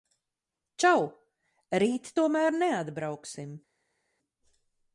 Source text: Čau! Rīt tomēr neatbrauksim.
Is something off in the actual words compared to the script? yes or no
no